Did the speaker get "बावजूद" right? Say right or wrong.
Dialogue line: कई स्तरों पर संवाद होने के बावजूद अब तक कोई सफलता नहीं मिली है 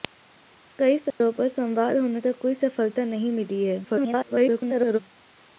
wrong